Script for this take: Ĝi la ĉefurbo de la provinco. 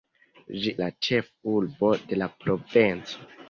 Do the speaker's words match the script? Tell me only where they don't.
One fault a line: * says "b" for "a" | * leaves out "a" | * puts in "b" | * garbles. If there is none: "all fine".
all fine